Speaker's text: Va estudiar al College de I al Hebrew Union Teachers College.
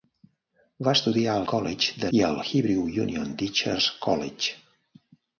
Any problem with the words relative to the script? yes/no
no